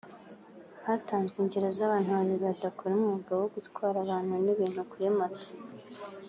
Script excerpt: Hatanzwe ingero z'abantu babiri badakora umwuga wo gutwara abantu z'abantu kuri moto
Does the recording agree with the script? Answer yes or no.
no